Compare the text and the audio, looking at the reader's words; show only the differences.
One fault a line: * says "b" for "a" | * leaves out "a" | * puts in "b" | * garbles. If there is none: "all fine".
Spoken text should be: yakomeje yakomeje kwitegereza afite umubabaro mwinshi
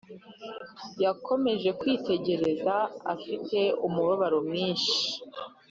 * leaves out "yakomeje"